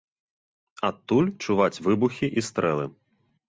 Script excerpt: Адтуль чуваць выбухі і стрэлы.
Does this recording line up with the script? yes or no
yes